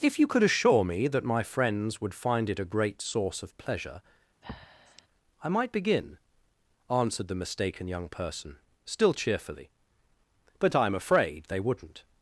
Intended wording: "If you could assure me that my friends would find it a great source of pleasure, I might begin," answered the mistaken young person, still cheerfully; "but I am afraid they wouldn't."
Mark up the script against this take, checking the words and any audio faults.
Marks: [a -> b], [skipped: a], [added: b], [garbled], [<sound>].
"If you could assure me that my friends would find it a great source of pleasure, [breath] I might begin," answered the mistaken young person, still cheerfully; "but I am afraid they wouldn't."